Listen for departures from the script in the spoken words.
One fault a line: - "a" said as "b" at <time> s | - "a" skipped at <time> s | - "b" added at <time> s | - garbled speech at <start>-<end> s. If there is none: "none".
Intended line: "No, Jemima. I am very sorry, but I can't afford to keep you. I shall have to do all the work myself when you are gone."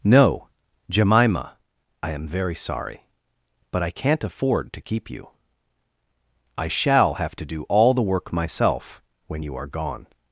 none